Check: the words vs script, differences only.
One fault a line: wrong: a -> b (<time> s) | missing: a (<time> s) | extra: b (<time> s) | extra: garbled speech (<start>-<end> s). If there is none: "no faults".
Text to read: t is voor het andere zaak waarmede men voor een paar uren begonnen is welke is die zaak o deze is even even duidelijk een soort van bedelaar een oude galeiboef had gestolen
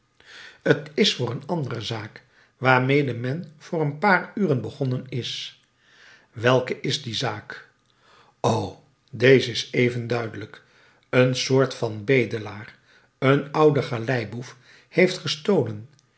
wrong: het -> een (1.3 s)
missing: even (10.1 s)
wrong: had -> heeft (14.9 s)